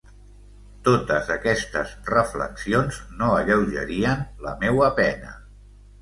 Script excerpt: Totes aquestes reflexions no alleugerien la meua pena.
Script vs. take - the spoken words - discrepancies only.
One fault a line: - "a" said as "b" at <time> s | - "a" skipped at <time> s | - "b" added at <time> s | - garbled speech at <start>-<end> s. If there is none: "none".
none